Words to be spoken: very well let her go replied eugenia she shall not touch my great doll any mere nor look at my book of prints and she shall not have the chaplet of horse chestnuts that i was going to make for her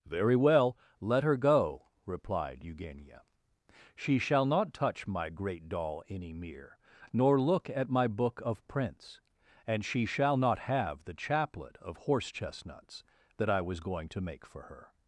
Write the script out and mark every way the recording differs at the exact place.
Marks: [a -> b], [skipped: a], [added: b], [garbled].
very well let her go replied eugenia she shall not touch my great doll any mere nor look at my book of prints and she shall not have the chaplet of horse chestnuts that i was going to make for her